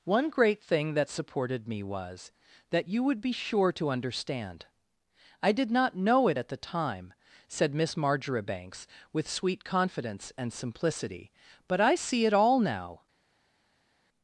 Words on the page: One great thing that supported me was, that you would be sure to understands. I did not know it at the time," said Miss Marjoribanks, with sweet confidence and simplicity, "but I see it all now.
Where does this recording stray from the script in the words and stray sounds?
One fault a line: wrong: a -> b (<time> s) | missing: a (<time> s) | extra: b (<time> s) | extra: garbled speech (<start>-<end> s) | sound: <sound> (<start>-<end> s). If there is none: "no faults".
wrong: understands -> understand (3.9 s)